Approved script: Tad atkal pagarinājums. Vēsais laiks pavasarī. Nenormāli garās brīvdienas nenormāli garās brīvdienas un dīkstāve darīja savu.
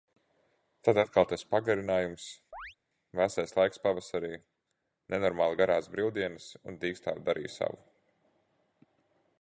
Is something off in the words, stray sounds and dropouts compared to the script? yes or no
yes